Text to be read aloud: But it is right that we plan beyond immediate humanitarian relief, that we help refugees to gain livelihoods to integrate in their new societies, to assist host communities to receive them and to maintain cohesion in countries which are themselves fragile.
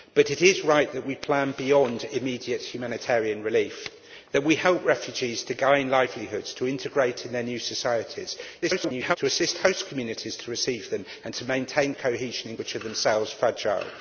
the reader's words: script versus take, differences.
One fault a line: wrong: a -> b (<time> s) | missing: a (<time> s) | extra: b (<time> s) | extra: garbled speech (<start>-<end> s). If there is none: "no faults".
extra: garbled speech (8.6-9.2 s)
missing: countries (12.6 s)